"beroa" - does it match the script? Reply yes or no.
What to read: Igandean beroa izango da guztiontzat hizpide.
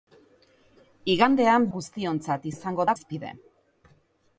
no